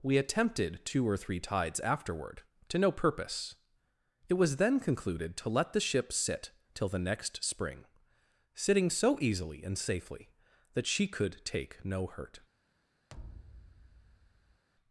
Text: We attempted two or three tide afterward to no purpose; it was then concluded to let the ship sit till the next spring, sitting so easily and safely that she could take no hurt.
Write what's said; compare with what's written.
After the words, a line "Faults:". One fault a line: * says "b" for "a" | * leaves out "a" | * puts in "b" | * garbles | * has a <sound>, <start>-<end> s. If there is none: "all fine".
We attempted two or three tides afterward to no purpose; it was then concluded to let the ship sit till the next spring, sitting so easily and safely that she could take no hurt.
Faults:
* says "tides" for "tide"
* has a thud, 13.1-14.6 s